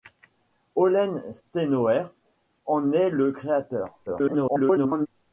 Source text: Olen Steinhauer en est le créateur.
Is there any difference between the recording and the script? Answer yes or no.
yes